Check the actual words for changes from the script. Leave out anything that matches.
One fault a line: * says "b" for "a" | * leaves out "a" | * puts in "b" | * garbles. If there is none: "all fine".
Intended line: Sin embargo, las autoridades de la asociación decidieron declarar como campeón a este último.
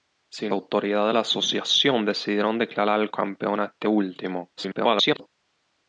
* leaves out "embargo las"
* leaves out "como"
* garbles